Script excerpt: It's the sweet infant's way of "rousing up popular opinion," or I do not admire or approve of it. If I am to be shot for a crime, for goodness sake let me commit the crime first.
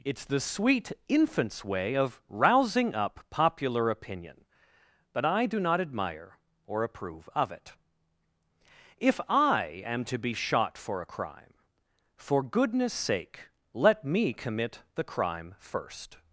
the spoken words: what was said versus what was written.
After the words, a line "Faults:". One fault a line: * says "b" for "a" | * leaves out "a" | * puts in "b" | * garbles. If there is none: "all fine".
It's the sweet infant's way of "rousing up popular opinion," but I do not admire or approve of it. If I am to be shot for a crime, for goodness sake let me commit the crime first.
Faults:
* says "but" for "or"